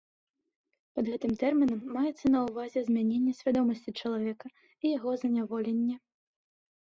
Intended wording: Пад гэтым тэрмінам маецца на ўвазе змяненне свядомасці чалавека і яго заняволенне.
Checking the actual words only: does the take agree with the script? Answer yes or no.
yes